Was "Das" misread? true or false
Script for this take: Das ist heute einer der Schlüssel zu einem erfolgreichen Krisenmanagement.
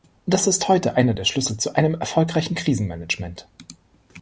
false